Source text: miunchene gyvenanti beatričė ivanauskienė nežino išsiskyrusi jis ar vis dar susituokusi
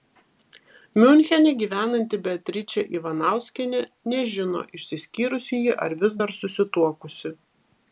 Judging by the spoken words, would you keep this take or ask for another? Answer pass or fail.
fail